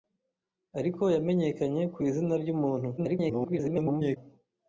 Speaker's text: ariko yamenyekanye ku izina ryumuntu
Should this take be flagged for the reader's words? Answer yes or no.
yes